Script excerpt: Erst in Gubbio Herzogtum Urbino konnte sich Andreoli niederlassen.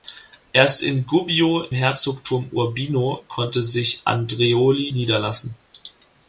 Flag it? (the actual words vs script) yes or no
no